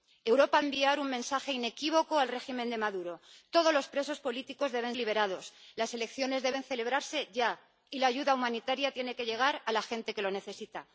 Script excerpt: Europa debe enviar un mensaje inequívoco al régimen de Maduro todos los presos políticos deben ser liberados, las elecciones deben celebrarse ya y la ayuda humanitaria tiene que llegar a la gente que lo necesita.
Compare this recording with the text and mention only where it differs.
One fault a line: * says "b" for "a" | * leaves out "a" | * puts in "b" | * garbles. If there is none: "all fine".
* leaves out "debe"
* leaves out "ser"